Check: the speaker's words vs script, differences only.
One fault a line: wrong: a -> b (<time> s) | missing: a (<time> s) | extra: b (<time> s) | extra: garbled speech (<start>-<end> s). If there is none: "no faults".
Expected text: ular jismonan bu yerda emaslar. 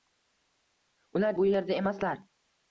missing: jismonan (1.4 s)